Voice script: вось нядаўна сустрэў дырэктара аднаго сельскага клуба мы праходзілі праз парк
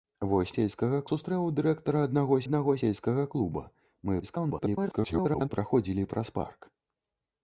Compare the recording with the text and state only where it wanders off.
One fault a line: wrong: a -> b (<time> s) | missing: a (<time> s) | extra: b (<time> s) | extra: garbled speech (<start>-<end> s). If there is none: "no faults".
wrong: нядаўна -> сельскага (0.6 s)
extra: аднаго (2.5 s)
extra: garbled speech (4.2-5.5 s)